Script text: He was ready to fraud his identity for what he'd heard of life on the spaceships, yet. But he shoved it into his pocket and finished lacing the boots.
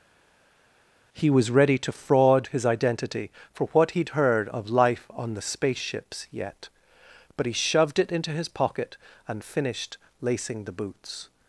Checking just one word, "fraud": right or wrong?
right